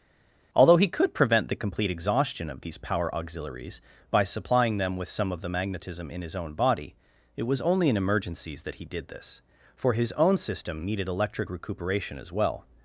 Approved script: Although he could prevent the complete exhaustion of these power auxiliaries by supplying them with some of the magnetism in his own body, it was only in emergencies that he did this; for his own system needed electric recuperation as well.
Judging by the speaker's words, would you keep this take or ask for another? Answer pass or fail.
pass